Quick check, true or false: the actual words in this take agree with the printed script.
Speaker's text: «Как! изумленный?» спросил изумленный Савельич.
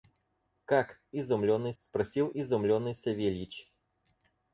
true